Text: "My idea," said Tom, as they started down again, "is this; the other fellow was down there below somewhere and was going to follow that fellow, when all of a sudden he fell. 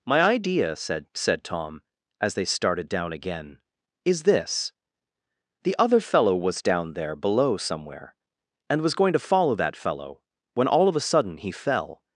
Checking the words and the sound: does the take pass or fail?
fail